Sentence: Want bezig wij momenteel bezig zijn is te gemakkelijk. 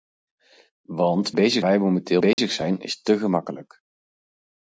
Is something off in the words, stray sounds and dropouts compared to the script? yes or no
yes